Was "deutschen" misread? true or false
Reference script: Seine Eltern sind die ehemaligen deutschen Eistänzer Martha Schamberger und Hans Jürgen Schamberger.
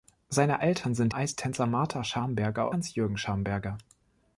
true